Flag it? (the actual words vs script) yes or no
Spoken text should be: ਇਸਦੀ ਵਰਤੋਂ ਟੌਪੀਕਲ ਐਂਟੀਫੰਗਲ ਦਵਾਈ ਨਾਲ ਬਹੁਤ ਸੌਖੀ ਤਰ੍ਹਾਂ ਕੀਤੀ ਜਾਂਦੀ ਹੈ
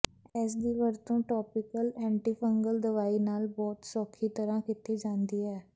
no